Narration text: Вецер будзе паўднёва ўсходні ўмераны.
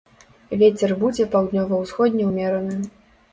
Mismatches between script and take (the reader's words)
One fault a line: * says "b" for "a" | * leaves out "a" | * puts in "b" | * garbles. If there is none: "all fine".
all fine